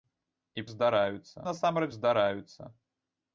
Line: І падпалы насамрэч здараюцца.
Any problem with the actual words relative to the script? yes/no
yes